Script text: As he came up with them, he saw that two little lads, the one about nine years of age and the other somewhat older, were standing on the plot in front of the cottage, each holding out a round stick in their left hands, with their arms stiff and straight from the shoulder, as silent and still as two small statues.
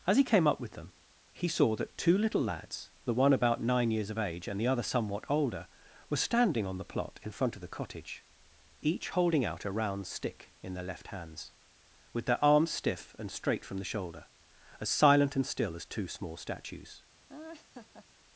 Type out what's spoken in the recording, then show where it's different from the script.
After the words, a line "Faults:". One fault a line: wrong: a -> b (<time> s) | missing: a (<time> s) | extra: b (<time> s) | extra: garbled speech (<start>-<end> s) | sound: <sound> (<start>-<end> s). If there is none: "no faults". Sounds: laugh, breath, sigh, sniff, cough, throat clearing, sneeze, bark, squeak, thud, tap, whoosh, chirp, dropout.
As he came up with them, he saw that two little lads, the one about nine years of age and the other somewhat older, were standing on the plot in front of the cottage, each holding out a round stick in their left hands, with their arms stiff and straight from the shoulder, as silent and still as two small statues.
Faults:
sound: laugh (17.3-18.1 s)